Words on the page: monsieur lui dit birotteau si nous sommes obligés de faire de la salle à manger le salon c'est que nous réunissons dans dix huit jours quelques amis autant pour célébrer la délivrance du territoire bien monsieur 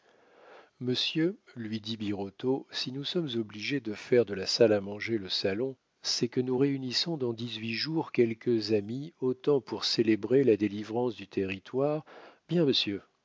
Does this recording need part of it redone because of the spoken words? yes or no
no